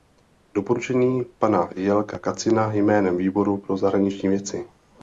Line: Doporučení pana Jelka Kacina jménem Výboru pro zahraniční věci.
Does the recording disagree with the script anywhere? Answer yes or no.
no